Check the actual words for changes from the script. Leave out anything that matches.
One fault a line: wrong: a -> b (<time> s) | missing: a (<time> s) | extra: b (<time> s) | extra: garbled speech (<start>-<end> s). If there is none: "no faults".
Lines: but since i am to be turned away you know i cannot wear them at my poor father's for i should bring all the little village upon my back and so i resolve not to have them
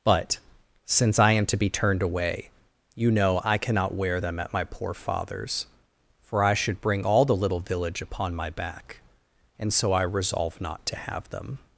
no faults